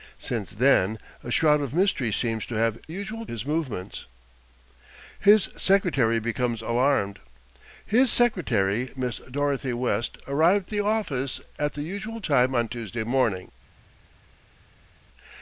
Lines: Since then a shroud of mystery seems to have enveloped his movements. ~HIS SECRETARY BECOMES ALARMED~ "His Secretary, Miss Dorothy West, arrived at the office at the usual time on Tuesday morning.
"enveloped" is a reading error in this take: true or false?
true